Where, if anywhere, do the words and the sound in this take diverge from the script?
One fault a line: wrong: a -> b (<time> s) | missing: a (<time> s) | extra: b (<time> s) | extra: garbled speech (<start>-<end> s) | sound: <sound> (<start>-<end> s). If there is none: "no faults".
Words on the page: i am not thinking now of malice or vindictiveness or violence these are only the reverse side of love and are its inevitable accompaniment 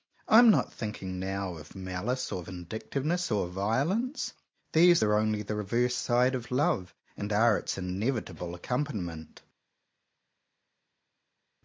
no faults